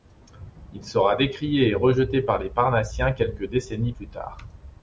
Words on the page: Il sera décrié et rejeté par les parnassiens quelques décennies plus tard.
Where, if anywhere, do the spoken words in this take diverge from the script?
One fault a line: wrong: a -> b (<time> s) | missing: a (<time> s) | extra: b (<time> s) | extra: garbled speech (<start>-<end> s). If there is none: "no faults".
no faults